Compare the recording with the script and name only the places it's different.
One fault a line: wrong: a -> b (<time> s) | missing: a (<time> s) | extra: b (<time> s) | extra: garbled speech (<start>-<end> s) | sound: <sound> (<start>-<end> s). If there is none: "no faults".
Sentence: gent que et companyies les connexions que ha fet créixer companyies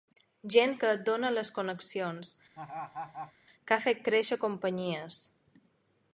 wrong: companyies -> dóna (1.1 s)
sound: laugh (2.6-3.3 s)